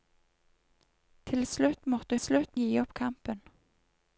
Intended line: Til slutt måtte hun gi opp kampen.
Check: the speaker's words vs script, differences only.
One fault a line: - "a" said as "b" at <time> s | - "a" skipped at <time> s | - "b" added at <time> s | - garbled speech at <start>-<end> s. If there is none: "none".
- "hun" said as "slutt" at 2.2 s